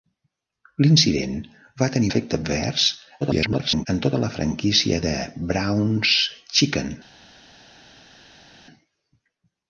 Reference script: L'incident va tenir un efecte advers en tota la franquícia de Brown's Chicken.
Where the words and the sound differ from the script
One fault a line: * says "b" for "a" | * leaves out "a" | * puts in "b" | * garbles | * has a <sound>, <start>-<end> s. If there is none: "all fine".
* leaves out "un"
* garbles